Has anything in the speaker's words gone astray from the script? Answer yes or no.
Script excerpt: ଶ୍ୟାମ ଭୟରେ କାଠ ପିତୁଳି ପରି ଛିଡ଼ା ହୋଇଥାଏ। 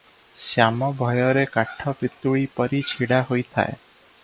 no